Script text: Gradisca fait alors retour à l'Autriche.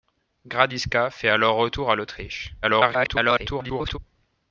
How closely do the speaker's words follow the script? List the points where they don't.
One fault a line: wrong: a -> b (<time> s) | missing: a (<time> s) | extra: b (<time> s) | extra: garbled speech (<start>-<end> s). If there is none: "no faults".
extra: garbled speech (2.6-4.0 s)